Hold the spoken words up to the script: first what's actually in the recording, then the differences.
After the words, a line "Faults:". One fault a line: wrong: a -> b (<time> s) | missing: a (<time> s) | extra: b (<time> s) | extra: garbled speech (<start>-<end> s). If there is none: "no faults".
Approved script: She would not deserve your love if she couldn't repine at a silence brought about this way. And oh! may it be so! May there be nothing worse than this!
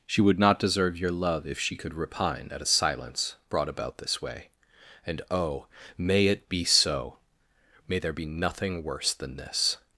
She would not deserve your love if she could repine at a silence brought about this way. And oh! may it be so! May there be nothing worse than this!
Faults:
wrong: couldn't -> could (1.8 s)